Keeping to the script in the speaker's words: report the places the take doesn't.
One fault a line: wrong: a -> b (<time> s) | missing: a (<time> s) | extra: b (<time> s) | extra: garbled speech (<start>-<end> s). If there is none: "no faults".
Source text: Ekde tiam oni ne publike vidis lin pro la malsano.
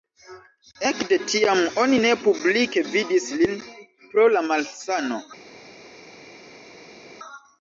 no faults